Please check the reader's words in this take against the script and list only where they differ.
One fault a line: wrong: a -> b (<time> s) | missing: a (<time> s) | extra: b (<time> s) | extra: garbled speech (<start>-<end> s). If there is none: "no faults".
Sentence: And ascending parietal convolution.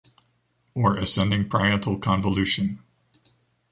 wrong: And -> Or (0.7 s)